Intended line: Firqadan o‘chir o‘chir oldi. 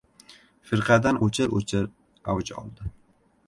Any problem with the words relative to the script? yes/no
yes